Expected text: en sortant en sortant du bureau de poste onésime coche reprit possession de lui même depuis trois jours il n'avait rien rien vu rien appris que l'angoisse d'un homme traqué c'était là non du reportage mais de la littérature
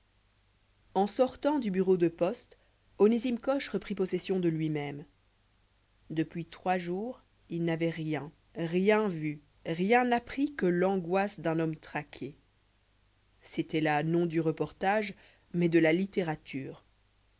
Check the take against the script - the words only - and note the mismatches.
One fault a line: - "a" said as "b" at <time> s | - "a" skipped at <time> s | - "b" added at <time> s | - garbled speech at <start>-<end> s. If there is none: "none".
- "en sortant" skipped at 1.6 s